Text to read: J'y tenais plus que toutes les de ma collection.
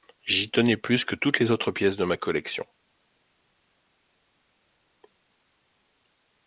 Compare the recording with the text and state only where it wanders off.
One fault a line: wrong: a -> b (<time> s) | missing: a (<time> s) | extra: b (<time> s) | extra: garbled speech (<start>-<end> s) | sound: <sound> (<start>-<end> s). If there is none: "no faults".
extra: autres pièces (1.5 s)